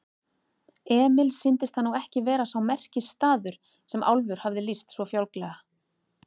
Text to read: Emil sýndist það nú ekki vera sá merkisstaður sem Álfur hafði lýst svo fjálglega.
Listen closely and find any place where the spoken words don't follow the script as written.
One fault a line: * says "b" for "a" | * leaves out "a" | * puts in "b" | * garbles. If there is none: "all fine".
all fine